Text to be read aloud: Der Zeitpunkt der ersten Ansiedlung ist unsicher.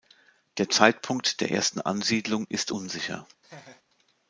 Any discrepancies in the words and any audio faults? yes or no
yes